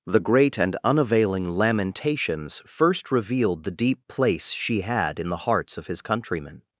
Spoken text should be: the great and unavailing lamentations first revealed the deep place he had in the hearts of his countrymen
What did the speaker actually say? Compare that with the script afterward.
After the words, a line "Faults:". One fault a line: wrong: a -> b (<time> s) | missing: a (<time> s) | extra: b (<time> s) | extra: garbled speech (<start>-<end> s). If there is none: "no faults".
the great and unavailing lamentations first revealed the deep place she had in the hearts of his countrymen
Faults:
wrong: he -> she (4.5 s)